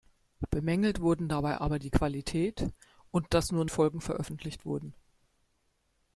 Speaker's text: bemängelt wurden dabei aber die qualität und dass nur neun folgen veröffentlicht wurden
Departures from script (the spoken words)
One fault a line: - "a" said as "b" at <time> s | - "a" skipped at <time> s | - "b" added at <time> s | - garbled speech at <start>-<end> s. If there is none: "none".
- "neun" skipped at 3.7 s